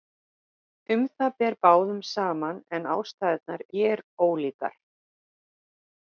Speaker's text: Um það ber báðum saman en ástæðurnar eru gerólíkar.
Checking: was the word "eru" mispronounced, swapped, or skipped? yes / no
yes